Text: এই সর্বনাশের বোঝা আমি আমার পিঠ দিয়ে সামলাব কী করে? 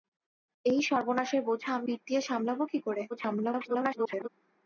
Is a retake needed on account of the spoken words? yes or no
yes